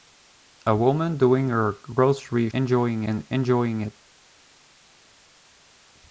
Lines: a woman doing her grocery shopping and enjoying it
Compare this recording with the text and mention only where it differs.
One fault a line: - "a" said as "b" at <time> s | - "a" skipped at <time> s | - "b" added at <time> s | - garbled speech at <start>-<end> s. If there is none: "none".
- "shopping" said as "enjoying" at 2.5 s